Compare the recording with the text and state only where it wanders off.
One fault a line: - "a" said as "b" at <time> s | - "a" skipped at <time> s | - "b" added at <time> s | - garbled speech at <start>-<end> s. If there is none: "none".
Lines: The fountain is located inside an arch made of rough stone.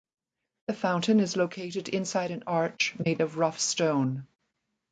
none